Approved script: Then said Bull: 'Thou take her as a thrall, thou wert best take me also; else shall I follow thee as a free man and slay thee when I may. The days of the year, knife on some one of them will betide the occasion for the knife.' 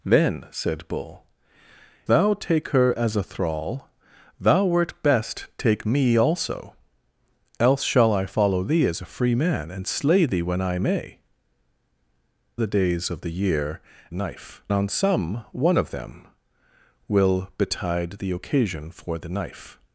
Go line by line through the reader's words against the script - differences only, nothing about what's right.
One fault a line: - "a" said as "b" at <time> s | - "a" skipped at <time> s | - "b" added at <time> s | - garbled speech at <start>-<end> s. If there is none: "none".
none